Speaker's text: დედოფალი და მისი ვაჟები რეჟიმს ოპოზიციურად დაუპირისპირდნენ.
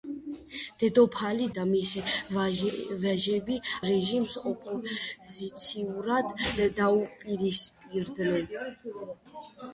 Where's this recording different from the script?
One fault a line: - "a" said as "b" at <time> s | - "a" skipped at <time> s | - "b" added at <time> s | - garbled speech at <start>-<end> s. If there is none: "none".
none